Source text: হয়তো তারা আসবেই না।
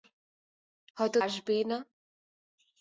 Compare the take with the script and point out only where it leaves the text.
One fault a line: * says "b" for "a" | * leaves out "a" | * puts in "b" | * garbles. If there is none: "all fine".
* leaves out "তারা"